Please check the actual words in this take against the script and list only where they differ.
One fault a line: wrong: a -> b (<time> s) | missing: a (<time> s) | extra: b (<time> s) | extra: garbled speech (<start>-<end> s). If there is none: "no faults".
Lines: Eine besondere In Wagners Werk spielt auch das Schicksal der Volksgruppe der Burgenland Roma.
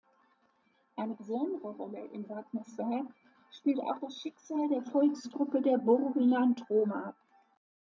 extra: Rolle (1.8 s)